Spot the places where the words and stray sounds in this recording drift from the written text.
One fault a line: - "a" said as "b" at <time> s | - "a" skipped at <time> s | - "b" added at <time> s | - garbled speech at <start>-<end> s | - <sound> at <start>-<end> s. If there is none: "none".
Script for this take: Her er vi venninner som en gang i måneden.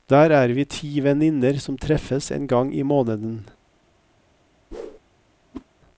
- "Her" said as "Der" at 0.1 s
- "ti" added at 0.6 s
- "treffes" added at 1.8 s
- whoosh at 4.7-5.0 s
- whoosh at 5.5-5.7 s